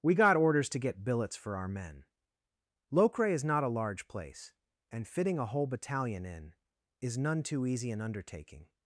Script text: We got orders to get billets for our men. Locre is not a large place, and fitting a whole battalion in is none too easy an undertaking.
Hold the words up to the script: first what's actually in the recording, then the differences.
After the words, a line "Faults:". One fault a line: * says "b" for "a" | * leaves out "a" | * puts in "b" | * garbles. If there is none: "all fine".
We got orders to get billets for our men. Locre is not a large place, and fitting a whole battalion in is none too easy an undertaking.
Faults:
all fine